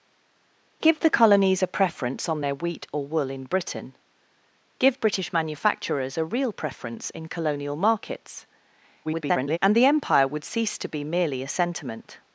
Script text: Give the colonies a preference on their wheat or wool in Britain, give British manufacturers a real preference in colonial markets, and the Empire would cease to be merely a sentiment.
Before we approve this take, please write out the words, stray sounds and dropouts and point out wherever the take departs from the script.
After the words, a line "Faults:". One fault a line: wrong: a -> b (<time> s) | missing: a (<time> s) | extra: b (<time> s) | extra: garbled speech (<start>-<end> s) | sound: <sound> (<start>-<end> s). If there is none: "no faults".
Give the colonies a preference on their wheat or wool in Britain, give British manufacturers a real preference in colonial markets, [garbled] and the Empire would cease to be merely a sentiment.
Faults:
extra: garbled speech (9.0-9.6 s)